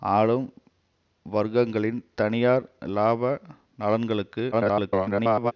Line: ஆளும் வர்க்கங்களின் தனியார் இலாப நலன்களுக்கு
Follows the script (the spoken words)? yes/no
no